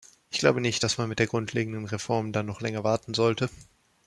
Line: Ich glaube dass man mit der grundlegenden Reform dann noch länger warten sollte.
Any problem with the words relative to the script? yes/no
yes